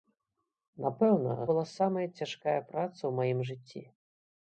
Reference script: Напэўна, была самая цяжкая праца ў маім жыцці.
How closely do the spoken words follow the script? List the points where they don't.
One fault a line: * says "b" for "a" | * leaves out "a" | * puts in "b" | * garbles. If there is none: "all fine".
all fine